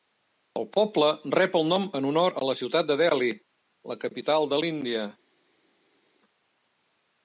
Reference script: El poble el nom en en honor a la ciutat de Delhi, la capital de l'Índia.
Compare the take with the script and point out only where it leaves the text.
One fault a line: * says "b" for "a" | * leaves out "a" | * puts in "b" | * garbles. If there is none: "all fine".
* puts in "rep"
* leaves out "en"